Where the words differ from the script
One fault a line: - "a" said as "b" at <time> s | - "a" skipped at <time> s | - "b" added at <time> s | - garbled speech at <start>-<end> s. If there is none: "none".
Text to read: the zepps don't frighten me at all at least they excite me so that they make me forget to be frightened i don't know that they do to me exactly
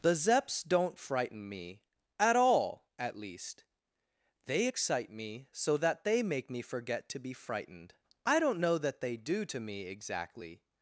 none